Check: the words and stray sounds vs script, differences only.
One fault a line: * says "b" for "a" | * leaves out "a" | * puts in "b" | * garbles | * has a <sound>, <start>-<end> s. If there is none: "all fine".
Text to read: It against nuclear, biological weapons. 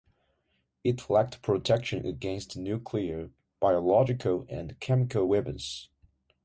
* puts in "lacked protection"
* puts in "and chemical"